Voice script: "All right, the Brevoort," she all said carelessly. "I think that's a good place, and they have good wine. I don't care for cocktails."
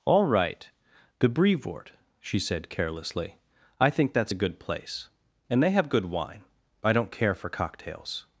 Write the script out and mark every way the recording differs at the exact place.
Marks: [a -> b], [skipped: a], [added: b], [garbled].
"All right, the Brevoort," she [skipped: all] said carelessly. "I think that's a good place, and they have good wine. I don't care for cocktails."